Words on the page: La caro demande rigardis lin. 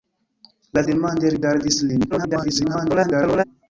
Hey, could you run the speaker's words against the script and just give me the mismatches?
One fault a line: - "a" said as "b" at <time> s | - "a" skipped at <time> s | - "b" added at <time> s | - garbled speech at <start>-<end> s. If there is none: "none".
- "caro" skipped at 0.8 s
- garbled speech at 2.1-3.4 s